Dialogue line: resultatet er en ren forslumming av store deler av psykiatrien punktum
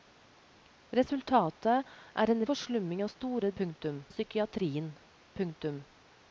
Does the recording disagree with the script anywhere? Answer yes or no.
yes